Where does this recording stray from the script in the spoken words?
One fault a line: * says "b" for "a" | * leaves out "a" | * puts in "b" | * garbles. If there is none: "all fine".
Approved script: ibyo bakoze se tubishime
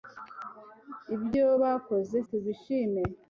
* leaves out "se"